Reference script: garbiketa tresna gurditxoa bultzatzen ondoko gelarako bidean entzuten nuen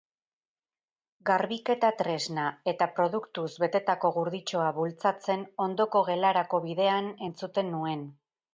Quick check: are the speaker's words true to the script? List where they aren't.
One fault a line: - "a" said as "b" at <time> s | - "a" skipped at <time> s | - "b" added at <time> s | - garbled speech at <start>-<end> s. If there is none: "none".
- "eta produktuz betetako" added at 2.7 s